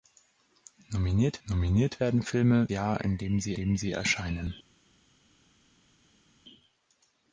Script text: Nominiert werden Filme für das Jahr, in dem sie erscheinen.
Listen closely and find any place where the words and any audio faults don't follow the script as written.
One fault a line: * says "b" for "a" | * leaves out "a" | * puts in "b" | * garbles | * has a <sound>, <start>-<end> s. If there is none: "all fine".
* puts in "nominiert"
* says "Jahr in dem sie" for "für das Jahr in"